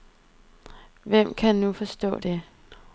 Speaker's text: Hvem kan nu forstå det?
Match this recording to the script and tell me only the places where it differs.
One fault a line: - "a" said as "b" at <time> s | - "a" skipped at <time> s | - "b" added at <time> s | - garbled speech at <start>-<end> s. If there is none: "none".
none